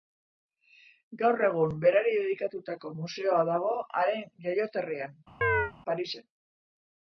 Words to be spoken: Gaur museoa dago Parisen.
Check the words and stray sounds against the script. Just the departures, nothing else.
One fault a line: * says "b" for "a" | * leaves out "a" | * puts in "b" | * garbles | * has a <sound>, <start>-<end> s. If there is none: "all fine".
* puts in "egun berari dedikatutako"
* puts in "haren jaioterrian"
* has a chirp, 5.4-5.7 s